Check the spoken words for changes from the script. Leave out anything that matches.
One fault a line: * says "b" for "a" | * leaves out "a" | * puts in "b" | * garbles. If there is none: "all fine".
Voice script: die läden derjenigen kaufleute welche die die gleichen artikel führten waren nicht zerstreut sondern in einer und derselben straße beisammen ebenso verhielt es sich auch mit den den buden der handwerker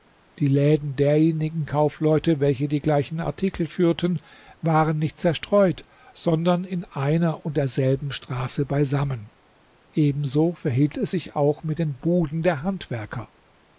* leaves out "die"
* leaves out "den"